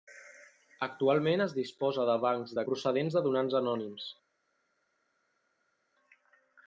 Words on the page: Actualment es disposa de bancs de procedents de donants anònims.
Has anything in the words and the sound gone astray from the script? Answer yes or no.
no